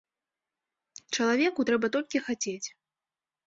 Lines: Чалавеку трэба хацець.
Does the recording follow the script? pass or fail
fail